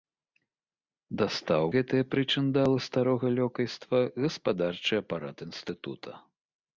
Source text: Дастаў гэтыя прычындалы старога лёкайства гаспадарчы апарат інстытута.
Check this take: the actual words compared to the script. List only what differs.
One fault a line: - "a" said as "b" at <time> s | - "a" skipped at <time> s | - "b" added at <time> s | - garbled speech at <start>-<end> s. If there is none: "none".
none